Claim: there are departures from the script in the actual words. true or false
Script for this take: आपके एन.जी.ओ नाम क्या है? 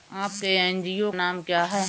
false